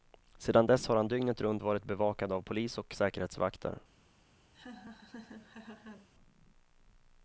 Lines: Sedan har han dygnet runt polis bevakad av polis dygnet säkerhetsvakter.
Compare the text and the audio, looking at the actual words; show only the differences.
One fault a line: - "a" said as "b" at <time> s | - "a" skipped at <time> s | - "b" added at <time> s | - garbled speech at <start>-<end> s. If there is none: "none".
- "dess" added at 0.7 s
- "polis" said as "varit" at 1.6 s
- "dygnet" said as "och" at 2.8 s